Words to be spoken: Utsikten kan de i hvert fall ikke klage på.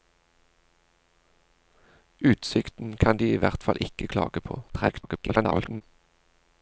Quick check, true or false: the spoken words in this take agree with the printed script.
false